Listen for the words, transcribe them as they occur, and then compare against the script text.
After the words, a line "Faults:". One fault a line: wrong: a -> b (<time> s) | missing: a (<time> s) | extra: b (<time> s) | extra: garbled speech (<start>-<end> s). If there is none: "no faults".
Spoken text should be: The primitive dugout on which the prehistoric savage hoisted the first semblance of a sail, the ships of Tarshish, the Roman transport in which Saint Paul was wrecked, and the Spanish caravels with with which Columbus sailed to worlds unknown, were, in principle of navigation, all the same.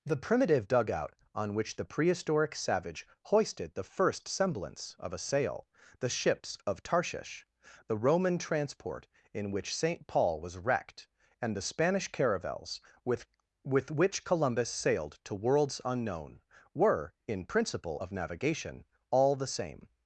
The primitive dugout on which the prehistoric savage hoisted the first semblance of a sail, the ships of Tarshish, the Roman transport in which Saint Paul was wrecked, and the Spanish caravels with with which Columbus sailed to worlds unknown, were, in principle of navigation, all the same.
Faults:
no faults